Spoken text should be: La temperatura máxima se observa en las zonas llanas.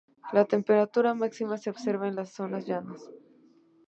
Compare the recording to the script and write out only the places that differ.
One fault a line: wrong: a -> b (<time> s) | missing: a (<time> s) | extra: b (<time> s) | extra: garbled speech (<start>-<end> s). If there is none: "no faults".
no faults